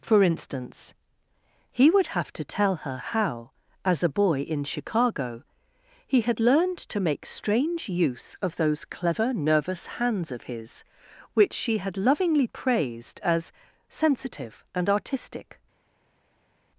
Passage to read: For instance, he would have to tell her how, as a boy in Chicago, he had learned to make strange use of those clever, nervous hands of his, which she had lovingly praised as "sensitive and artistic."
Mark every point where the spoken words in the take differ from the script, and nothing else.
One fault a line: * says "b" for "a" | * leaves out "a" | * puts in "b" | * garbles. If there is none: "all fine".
all fine